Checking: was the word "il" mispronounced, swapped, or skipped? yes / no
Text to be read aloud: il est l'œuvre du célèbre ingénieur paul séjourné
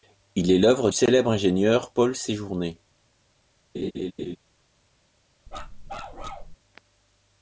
no